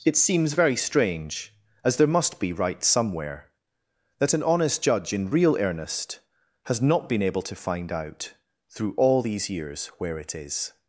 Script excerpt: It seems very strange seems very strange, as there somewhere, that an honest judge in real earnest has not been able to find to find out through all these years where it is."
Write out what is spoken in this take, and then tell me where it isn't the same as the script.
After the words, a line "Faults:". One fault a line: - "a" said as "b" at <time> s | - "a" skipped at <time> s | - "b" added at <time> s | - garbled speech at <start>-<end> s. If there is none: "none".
It seems very strange, as there must be right somewhere, that an honest judge in real earnest has not been able to find out through all these years where it is."
Faults:
- "seems very strange as there" said as "as there must be right" at 1.8 s
- "to find" skipped at 7.9 s